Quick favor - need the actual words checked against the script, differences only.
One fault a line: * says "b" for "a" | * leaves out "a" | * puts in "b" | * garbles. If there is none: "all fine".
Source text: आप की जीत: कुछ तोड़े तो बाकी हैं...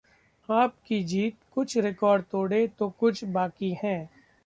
* puts in "रिकॉर्ड"
* puts in "कुछ"